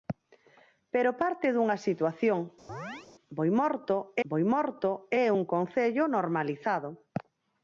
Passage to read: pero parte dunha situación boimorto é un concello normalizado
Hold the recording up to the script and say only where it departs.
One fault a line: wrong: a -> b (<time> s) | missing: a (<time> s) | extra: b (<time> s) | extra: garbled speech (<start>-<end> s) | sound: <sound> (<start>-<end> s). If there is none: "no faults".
sound: chirp (2.7-3.1 s)
extra: boimorto (4.3 s)